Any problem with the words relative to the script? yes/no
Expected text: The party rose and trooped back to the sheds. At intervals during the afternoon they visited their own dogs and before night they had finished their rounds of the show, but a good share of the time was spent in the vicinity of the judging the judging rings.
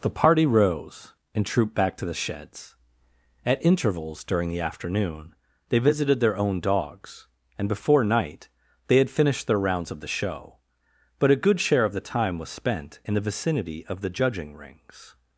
yes